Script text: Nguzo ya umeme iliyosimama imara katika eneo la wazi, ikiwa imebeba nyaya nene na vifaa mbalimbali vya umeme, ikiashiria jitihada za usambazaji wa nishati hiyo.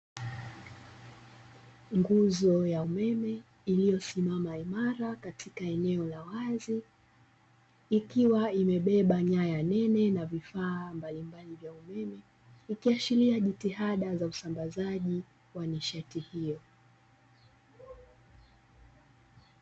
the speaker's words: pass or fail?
pass